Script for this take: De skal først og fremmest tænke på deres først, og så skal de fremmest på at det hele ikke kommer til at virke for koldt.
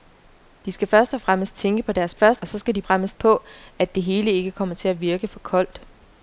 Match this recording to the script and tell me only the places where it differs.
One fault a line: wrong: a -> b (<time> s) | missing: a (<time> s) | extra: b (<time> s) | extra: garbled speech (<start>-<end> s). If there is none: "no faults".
no faults